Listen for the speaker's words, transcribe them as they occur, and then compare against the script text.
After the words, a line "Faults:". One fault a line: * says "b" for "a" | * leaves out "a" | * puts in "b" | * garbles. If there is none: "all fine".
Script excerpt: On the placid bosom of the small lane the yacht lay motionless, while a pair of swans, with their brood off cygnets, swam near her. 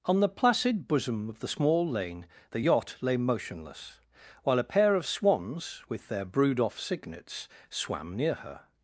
On the placid bosom of the small lane the yacht lay motionless, while a pair of swans, with their brood off cygnets, swam near her.
Faults:
all fine